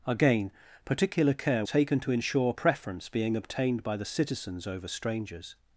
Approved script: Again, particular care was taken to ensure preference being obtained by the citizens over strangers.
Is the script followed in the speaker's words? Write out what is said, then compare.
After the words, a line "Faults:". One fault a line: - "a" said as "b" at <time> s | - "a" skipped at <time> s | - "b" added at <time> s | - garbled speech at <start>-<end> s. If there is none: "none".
Again, particular care taken to ensure preference being obtained by the citizens over strangers.
Faults:
- "was" skipped at 1.6 s